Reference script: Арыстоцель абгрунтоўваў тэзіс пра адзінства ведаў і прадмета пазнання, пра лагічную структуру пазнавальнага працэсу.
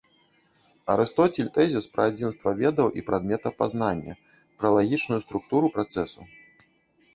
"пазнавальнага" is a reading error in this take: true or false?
true